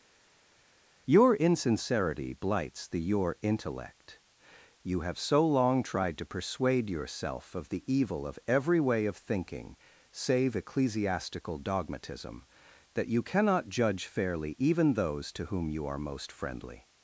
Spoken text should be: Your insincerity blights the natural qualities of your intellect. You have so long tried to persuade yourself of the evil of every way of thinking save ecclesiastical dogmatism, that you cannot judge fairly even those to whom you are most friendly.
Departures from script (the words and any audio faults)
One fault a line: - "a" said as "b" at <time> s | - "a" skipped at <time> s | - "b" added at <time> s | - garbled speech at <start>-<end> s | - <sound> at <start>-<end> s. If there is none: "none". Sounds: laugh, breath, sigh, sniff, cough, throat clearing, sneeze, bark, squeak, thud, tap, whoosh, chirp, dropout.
- "natural qualities of" skipped at 3.0 s